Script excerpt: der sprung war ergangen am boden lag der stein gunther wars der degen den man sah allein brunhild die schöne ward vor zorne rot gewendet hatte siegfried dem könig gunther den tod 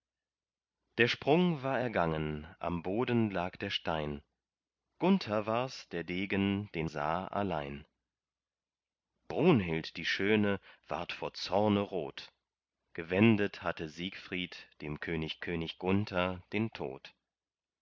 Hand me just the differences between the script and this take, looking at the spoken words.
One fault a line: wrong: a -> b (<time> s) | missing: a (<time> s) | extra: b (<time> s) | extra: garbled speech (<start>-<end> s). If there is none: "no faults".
missing: man (6.9 s)
extra: könig (15.4 s)